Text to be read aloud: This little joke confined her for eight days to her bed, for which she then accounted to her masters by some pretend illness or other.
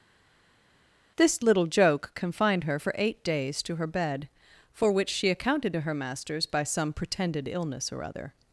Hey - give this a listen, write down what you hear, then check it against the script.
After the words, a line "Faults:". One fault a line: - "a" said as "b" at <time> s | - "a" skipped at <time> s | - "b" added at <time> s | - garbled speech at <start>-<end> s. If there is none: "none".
This little joke confined her for eight days to her bed, for which she accounted to her masters by some pretended illness or other.
Faults:
- "then" skipped at 5.3 s
- "pretend" said as "pretended" at 6.9 s